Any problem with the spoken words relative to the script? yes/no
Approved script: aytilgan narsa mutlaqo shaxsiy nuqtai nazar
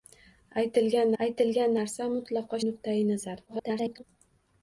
yes